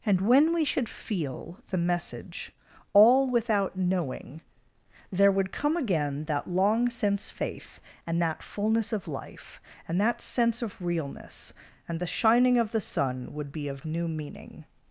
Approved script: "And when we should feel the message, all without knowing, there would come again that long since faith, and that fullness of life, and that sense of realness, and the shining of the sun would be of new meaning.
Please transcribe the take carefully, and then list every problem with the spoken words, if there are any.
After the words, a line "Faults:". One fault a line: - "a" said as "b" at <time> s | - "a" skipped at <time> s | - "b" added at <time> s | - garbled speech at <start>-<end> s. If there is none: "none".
"And when we should feel the message, all without knowing, there would come again that long since faith, and that fullness of life, and that sense of realness, and the shining of the sun would be of new meaning.
Faults:
none